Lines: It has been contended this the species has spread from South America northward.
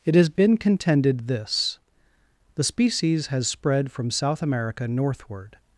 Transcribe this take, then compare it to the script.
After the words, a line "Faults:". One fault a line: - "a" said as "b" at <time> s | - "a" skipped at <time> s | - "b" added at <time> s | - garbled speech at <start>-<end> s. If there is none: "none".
It has been contended this the species has spread from South America northward.
Faults:
none